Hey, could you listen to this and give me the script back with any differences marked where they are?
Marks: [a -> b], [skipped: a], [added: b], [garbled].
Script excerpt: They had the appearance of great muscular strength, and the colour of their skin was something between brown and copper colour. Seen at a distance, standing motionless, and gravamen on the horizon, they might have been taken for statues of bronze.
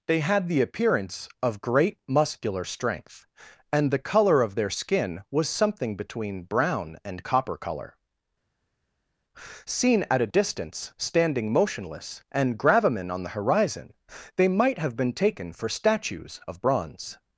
They had the appearance of great muscular strength, and the colour of their skin was something between brown and copper colour. Seen at a distance, standing motionless, and gravamen on the horizon, they might have been taken for statues of bronze.